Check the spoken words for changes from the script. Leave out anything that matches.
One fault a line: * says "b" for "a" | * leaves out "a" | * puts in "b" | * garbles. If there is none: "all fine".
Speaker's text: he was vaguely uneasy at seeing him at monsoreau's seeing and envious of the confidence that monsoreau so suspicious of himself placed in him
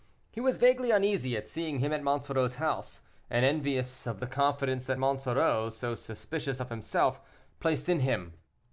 * says "house" for "seeing"